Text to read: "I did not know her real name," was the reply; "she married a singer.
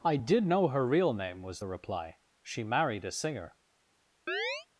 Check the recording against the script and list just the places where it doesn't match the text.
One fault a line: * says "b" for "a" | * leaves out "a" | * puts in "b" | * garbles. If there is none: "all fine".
* leaves out "not"